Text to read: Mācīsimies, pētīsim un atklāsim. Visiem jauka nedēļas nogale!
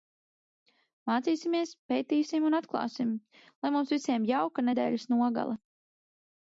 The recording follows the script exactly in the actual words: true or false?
false